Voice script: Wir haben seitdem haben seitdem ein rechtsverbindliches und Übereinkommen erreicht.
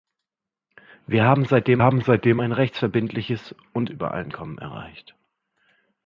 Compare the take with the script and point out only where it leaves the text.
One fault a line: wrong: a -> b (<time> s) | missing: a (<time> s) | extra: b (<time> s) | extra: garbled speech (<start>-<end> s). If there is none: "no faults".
no faults